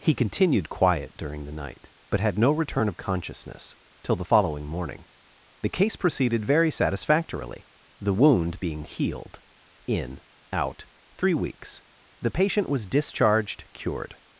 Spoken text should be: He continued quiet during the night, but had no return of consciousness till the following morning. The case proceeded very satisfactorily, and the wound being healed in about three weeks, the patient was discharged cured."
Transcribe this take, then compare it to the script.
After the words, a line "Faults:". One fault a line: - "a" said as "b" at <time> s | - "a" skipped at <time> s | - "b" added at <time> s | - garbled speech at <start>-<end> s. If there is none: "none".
He continued quiet during the night, but had no return of consciousness till the following morning. The case proceeded very satisfactorily, the wound being healed in out three weeks, the patient was discharged cured."
Faults:
- "and" skipped at 7.7 s
- "about" said as "out" at 10.5 s